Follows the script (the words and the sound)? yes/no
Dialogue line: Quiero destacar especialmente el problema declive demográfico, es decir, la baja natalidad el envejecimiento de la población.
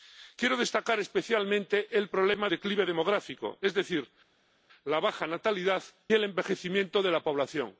yes